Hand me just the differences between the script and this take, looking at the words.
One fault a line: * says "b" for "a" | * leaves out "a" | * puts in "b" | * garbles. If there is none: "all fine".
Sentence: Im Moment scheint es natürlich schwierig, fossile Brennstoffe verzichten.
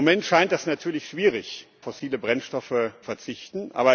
all fine